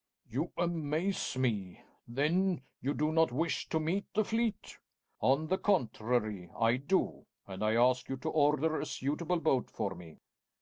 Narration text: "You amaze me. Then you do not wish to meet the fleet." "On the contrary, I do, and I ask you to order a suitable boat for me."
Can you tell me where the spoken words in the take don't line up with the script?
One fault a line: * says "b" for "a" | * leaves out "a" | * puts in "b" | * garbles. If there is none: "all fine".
all fine